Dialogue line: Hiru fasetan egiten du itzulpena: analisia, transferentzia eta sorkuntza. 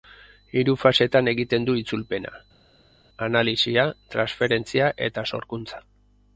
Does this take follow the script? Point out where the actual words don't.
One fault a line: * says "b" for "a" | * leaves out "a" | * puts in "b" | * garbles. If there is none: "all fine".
all fine